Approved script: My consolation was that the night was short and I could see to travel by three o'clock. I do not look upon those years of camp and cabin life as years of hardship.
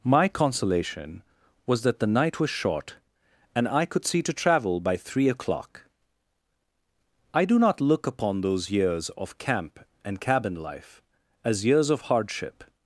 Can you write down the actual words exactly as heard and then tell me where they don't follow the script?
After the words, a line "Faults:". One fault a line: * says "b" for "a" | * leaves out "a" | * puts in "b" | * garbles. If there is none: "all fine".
My consolation was that the night was short and I could see to travel by three o'clock. I do not look upon those years of camp and cabin life as years of hardship.
Faults:
all fine